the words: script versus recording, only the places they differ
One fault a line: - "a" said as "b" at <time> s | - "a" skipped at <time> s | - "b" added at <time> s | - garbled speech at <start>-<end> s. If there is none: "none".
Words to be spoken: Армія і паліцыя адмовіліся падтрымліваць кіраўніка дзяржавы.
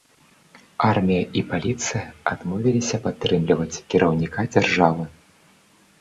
none